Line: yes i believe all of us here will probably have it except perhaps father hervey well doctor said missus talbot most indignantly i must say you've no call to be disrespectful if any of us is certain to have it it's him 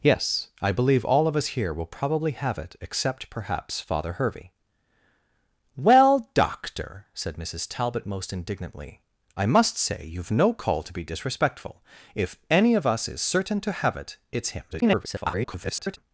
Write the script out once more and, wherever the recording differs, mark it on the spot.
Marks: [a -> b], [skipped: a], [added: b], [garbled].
yes i believe all of us here will probably have it except perhaps father hervey well doctor said missus talbot most indignantly i must say you've no call to be disrespectful if any of us is certain to have it it's him [garbled]